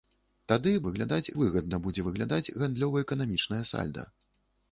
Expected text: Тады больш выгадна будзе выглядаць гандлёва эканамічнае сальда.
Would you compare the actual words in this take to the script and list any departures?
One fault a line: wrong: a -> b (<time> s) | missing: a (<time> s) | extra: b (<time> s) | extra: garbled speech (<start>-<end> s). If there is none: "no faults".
wrong: больш -> выглядаць (0.9 s)